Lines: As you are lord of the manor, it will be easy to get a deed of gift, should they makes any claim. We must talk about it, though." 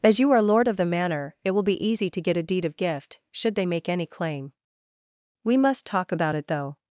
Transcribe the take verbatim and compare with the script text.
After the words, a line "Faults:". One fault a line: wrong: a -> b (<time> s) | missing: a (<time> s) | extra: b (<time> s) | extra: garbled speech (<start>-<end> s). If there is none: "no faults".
As you are lord of the manor, it will be easy to get a deed of gift, should they make any claim. We must talk about it, though."
Faults:
wrong: makes -> make (3.7 s)